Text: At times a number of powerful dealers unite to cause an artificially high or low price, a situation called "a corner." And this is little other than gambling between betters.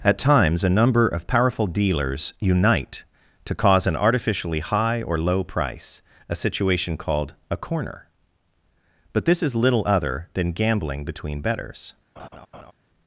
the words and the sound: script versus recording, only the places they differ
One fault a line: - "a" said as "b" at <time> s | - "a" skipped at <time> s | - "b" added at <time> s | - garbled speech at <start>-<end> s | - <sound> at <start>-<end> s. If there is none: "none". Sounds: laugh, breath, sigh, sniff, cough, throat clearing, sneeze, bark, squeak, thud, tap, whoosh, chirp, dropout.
- "And" said as "But" at 9.1 s
- laugh at 12.2-12.7 s